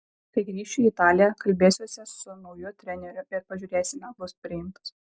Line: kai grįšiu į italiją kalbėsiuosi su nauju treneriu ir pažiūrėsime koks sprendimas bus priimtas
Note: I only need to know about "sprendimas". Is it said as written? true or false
false